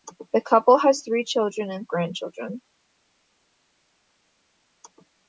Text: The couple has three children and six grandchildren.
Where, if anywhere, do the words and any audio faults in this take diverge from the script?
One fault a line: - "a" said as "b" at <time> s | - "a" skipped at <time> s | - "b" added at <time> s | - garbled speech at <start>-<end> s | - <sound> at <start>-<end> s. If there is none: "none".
- "six" skipped at 1.9 s